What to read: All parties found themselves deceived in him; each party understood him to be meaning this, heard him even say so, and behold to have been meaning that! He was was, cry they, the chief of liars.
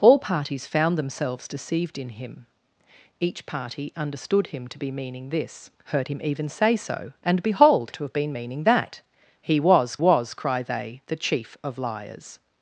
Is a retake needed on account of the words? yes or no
no